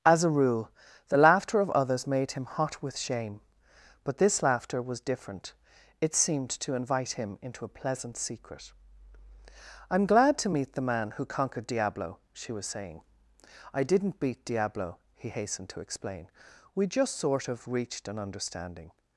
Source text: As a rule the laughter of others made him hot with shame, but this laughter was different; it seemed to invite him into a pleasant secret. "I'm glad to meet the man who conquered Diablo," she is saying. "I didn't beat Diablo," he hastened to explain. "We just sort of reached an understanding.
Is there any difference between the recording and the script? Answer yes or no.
yes